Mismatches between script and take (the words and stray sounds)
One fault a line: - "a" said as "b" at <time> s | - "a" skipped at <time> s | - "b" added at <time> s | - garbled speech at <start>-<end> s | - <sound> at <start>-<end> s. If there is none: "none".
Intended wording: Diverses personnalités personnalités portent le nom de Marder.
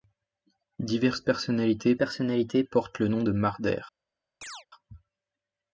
- chirp at 4.4-4.7 s